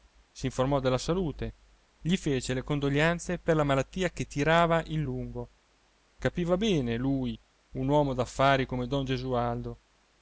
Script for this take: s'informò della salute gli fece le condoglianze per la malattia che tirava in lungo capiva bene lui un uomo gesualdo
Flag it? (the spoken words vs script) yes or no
yes